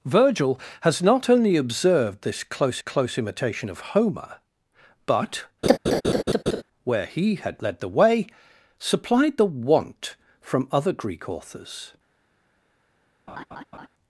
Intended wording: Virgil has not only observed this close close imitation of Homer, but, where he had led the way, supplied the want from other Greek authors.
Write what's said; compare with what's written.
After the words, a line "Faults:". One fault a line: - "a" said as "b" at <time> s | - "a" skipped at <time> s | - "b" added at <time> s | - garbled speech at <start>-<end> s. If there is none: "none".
Virgil has not only observed this close close imitation of Homer, but, where he had led the way, supplied the want from other Greek authors.
Faults:
none